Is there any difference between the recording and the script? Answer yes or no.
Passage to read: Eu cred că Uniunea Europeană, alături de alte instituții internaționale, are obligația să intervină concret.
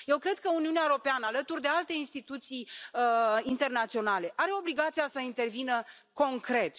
no